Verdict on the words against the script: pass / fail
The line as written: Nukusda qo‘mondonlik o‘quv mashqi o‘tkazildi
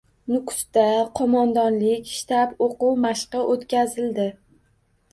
fail